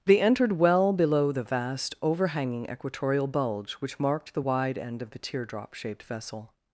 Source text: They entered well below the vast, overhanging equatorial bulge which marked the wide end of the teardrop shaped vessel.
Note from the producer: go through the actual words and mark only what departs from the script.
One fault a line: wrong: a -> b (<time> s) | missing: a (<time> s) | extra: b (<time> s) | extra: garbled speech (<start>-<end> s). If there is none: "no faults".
no faults